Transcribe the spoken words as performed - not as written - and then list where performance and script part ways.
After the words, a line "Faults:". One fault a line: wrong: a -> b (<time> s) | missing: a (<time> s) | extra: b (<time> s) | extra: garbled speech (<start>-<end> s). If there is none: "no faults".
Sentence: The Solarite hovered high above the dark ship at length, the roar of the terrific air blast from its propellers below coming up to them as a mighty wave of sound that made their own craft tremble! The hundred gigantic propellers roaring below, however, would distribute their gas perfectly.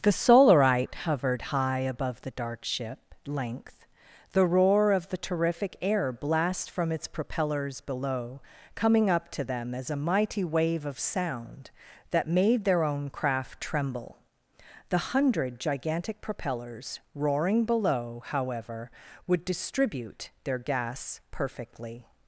The Solarite hovered high above the dark ship length, the roar of the terrific air blast from its propellers below coming up to them as a mighty wave of sound that made their own craft tremble! The hundred gigantic propellers roaring below, however, would distribute their gas perfectly.
Faults:
missing: at (3.1 s)